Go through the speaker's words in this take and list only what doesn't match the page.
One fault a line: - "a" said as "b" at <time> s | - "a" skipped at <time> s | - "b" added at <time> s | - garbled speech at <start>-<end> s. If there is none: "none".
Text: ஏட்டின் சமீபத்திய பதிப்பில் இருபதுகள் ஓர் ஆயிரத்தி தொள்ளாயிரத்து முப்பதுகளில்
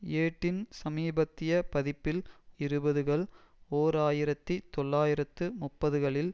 none